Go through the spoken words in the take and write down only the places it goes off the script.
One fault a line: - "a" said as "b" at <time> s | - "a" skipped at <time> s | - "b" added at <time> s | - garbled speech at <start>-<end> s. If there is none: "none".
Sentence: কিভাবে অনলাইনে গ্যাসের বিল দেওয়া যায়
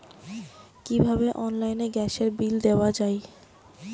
none